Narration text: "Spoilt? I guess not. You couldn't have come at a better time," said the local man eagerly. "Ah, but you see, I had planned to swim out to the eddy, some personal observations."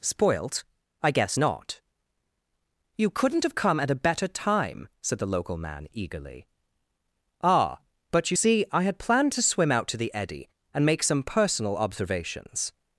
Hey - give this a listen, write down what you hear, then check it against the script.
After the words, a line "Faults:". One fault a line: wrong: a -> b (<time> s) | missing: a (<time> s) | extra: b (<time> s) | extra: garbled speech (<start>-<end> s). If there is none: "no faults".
"Spoilt? I guess not. You couldn't have come at a better time," said the local man eagerly. "Ah, but you see, I had planned to swim out to the eddy, and make some personal observations."
Faults:
extra: and make (10.7 s)